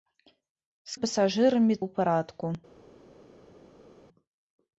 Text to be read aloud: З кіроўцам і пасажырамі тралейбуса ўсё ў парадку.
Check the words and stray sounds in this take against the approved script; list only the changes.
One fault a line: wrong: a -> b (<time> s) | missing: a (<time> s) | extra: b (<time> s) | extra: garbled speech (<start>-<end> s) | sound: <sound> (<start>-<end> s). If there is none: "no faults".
missing: кіроўцам (1.0 s)
missing: тралейбуса ўсё (1.8 s)